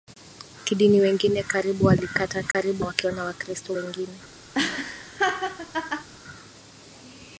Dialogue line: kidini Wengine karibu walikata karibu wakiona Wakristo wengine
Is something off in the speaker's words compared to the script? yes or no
no